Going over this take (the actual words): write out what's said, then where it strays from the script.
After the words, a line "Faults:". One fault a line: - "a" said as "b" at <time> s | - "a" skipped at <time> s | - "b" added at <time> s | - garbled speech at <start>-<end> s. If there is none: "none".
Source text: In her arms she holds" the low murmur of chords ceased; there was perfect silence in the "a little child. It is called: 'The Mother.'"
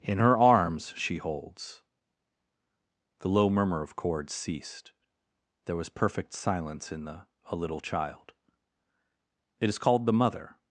In her arms she holds" the low murmur of chords ceased; there was perfect silence in the "a little child. It is called: 'The Mother.'"
Faults:
none